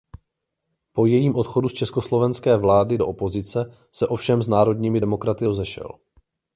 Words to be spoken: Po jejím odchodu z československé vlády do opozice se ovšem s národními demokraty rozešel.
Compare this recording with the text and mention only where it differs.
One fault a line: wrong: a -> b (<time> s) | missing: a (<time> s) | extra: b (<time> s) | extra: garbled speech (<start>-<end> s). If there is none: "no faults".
no faults